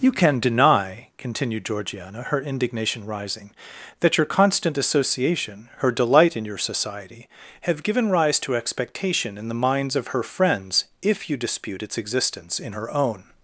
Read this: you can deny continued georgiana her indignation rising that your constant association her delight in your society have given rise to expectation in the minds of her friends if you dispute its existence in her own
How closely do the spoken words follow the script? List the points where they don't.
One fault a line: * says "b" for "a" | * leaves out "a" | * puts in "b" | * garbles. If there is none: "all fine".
all fine